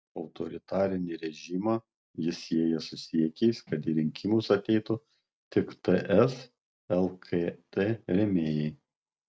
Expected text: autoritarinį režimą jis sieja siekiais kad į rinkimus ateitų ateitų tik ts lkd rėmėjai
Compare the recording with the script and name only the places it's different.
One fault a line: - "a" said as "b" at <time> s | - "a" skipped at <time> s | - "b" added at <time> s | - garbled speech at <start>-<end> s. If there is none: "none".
- "su" added at 2.9 s
- "ateitų" skipped at 5.0 s